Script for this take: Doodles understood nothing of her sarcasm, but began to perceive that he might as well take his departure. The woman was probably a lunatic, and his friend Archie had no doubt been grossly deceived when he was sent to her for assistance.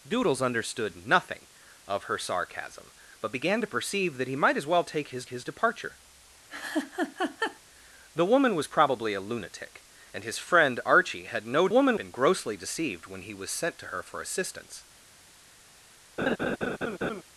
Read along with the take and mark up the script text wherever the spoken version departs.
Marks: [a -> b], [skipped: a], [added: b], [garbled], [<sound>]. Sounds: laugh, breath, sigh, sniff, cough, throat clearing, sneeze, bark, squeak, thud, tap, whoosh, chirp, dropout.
Doodles understood nothing of her sarcasm, but began to perceive that he might as well take his [added: his] departure. [laugh] The woman was probably a lunatic, and his friend Archie had no [doubt -> woman] been grossly deceived when he was sent to her for assistance. [laugh]